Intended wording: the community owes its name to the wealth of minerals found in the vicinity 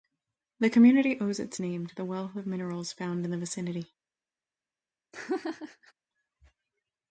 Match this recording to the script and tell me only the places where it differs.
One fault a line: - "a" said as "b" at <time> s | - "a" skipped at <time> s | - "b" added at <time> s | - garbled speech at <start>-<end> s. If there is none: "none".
none